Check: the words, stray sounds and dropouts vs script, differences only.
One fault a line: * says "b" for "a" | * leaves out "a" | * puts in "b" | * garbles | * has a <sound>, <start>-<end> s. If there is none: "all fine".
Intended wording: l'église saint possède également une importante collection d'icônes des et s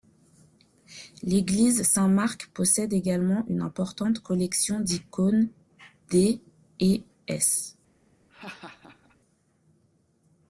* puts in "marc"
* has a laugh, 8.3-9.2 s